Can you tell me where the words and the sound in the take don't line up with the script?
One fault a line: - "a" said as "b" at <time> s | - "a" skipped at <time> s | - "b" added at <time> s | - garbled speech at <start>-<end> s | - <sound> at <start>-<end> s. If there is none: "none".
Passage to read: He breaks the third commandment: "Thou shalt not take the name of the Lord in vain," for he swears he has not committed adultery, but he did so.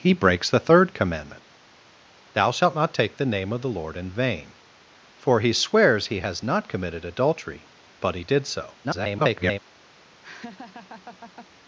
- garbled speech at 8.8-9.6 s
- laugh at 10.2-11.5 s